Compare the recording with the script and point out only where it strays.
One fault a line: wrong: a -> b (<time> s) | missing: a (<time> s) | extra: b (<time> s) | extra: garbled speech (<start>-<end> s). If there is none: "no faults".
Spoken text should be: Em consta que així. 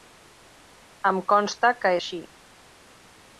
no faults